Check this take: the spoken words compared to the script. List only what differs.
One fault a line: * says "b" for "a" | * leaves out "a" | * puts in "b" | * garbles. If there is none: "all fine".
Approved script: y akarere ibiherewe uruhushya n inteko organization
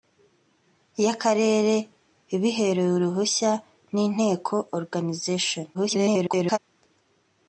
* garbles